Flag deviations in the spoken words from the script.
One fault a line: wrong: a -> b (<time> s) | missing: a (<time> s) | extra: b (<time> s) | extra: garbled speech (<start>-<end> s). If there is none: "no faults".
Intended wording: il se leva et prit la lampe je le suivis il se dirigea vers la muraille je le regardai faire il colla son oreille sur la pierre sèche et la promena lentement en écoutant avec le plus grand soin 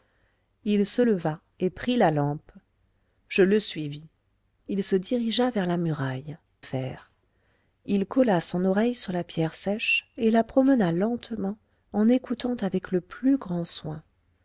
missing: je le regardai (6.4 s)